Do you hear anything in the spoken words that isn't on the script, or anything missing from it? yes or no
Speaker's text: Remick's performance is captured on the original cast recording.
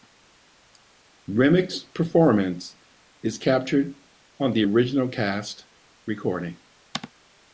no